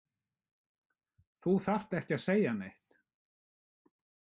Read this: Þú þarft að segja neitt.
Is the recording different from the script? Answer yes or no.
yes